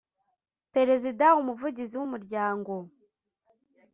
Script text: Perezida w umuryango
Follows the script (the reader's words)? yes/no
no